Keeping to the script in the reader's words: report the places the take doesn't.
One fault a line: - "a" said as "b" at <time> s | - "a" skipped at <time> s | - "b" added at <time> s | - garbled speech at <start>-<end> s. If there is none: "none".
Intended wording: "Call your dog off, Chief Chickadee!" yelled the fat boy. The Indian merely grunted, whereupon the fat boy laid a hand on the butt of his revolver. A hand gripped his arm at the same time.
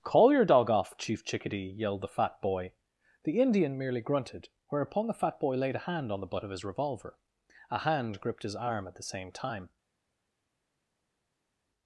none